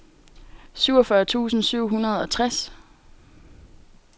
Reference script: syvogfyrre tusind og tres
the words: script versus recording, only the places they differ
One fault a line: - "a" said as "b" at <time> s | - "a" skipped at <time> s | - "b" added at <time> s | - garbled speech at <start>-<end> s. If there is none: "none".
- "syv hundrede" added at 1.6 s